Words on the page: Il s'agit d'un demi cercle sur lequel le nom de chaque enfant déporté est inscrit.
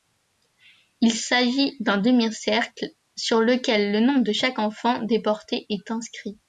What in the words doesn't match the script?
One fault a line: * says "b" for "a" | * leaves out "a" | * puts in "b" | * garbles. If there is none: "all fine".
all fine